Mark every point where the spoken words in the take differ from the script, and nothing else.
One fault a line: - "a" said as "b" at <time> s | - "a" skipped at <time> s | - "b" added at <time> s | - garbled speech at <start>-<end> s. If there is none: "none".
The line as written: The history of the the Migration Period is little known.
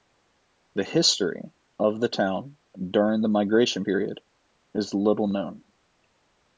- "town during" added at 2.1 s